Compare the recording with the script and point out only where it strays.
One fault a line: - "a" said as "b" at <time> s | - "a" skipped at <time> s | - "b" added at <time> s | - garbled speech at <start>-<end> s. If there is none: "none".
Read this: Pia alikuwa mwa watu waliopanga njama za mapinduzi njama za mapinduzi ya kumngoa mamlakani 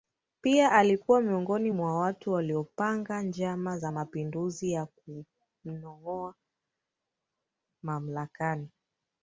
- "miongoni" added at 1.2 s
- "njama za mapinduzi" skipped at 4.7 s